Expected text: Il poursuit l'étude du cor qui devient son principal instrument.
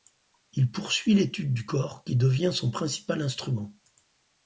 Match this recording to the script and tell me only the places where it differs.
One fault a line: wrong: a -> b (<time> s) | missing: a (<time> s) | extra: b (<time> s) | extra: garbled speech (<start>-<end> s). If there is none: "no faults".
no faults